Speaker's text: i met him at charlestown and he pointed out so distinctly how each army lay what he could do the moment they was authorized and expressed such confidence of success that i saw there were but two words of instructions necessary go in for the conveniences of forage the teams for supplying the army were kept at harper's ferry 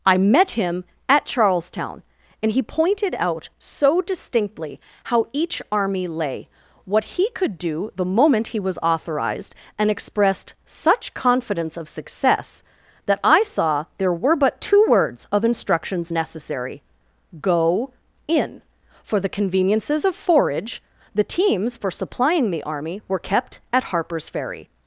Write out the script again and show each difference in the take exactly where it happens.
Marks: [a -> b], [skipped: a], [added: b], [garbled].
i met him at charlestown and he pointed out so distinctly how each army lay what he could do the moment [they -> he] was authorized and expressed such confidence of success that i saw there were but two words of instructions necessary go in for the conveniences of forage the teams for supplying the army were kept at harper's ferry